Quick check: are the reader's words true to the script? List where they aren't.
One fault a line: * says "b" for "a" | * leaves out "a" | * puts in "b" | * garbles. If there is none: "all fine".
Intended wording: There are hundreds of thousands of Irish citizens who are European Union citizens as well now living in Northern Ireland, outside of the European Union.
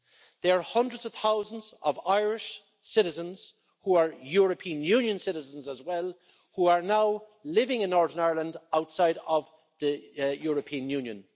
* puts in "who are"